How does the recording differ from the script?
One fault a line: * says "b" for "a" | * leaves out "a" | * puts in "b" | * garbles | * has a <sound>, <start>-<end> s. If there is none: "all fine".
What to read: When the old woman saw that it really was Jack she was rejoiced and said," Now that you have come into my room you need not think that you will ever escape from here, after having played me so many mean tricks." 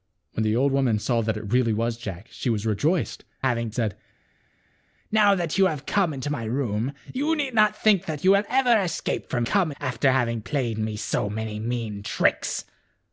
* says "having" for "and"
* says "come" for "here"